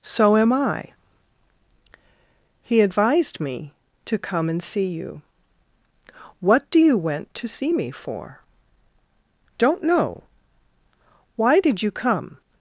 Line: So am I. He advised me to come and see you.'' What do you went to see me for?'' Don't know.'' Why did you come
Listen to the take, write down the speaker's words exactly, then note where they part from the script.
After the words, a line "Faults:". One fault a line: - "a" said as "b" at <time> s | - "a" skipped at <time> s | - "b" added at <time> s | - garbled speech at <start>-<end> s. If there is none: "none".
So am I. He advised me to come and see you.'' What do you went to see me for?'' Don't know.'' Why did you come
Faults:
none